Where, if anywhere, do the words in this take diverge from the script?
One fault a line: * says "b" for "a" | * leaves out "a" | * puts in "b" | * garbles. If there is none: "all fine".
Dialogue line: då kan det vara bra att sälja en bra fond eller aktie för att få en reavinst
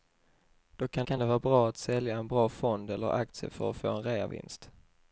* puts in "kan"